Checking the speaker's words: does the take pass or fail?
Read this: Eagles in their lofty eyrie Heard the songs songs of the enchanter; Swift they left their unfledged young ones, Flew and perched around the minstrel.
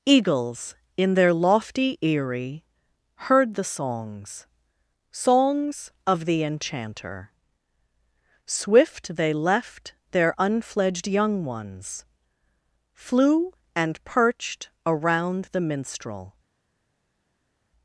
pass